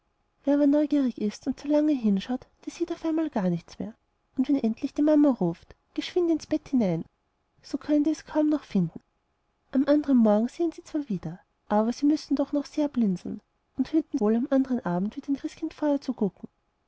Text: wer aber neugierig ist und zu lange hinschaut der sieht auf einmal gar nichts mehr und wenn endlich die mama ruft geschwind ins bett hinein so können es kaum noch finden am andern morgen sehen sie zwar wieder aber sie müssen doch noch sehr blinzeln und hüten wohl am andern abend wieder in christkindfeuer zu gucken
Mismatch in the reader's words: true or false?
false